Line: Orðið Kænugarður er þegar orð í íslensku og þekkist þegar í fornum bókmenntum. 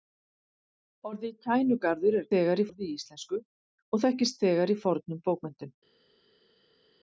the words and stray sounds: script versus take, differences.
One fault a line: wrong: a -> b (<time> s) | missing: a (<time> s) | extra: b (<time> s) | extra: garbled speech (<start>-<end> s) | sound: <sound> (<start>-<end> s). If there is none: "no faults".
no faults